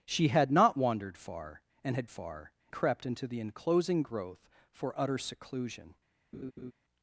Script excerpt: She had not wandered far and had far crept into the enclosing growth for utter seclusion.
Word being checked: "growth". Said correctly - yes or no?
yes